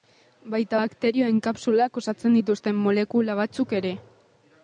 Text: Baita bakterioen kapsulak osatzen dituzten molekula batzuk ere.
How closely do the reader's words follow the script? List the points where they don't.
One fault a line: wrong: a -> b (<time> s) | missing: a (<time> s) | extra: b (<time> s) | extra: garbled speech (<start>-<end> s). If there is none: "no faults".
no faults